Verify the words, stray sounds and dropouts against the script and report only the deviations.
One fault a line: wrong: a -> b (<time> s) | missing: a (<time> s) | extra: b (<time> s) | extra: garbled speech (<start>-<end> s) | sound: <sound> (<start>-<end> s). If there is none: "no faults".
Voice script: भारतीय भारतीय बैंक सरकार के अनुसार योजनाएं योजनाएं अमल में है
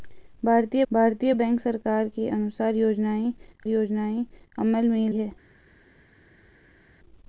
no faults